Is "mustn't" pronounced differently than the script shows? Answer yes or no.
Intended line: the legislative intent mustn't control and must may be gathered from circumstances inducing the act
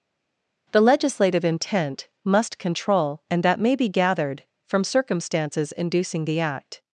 yes